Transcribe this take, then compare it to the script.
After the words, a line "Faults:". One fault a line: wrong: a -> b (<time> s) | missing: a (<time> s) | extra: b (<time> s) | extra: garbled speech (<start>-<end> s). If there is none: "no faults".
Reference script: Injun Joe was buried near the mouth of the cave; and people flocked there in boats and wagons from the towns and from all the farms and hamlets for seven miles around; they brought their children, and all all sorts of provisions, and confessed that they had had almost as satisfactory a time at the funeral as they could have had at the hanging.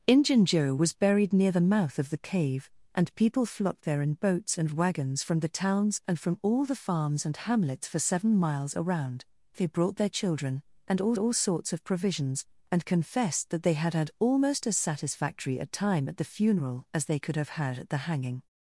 Injun Joe was buried near the mouth of the cave; and people flocked there in boats and wagons from the towns and from all the farms and hamlets for seven miles around; they brought their children, and all all sorts of provisions, and confessed that they had had almost as satisfactory a time at the funeral as they could have had at the hanging.
Faults:
no faults